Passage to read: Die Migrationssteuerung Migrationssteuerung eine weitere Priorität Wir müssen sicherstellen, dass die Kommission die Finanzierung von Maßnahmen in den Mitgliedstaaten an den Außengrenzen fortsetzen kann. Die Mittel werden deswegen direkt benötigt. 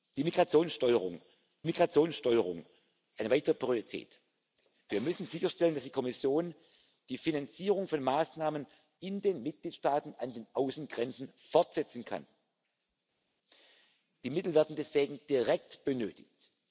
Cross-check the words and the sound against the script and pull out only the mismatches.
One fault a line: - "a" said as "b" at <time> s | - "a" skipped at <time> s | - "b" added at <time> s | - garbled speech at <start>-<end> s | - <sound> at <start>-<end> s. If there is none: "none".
none